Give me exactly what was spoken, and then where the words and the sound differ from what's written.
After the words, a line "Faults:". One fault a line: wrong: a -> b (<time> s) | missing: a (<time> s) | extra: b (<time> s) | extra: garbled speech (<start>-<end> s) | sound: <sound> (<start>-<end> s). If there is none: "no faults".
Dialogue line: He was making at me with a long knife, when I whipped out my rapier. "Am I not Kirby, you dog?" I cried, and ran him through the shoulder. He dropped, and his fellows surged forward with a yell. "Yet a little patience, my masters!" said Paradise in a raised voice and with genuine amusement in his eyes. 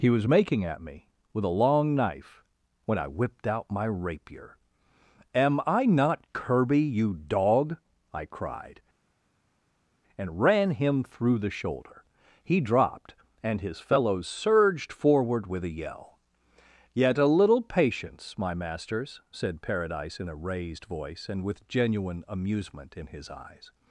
He was making at me with a long knife, when I whipped out my rapier. "Am I not Kirby, you dog?" I cried, and ran him through the shoulder. He dropped, and his fellows surged forward with a yell. "Yet a little patience, my masters!" said Paradise in a raised voice and with genuine amusement in his eyes.
Faults:
no faults